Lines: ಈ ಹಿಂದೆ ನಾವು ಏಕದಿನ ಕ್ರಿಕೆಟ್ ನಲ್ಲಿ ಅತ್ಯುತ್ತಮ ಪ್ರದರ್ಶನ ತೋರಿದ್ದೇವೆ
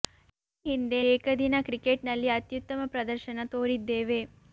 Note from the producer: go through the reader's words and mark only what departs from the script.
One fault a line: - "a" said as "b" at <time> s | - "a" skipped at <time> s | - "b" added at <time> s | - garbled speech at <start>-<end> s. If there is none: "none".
- "ನಾವು" skipped at 1.0 s